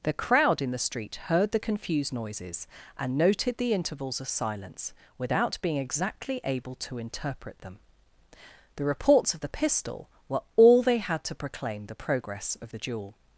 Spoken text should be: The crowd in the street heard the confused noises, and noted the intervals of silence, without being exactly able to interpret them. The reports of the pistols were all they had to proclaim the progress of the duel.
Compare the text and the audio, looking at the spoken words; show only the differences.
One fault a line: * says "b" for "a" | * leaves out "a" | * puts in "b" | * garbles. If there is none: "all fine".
* says "pistol" for "pistols"